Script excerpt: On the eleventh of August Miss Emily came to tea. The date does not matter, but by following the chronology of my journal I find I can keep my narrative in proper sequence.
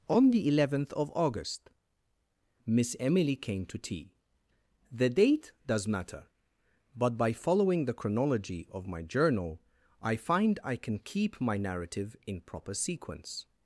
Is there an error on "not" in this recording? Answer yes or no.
yes